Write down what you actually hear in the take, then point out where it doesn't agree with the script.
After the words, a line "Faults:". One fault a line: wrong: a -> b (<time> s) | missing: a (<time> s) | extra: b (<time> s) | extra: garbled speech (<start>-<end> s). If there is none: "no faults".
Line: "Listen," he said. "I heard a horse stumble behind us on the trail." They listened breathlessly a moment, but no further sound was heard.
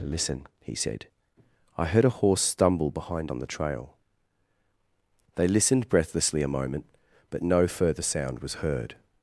"Listen," he said. "I heard a horse stumble behind on the trail." They listened breathlessly a moment, but no further sound was heard.
Faults:
missing: us (3.3 s)